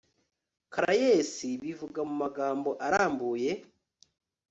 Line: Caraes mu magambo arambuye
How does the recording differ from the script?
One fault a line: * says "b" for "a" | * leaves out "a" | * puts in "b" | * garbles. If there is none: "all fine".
* puts in "bivuga"